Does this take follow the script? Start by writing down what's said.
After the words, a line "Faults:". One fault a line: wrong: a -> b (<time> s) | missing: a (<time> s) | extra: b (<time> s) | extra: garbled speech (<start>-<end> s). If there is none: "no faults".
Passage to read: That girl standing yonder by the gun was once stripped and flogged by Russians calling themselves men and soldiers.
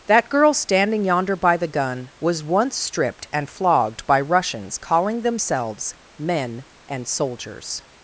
That girl standing yonder by the gun was once stripped and flogged by Russians calling themselves men and soldiers.
Faults:
no faults